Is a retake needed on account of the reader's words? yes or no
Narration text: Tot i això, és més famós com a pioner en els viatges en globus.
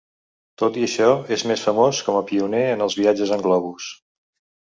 no